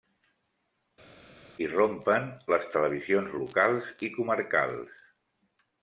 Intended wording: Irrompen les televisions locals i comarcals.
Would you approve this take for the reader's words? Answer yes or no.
yes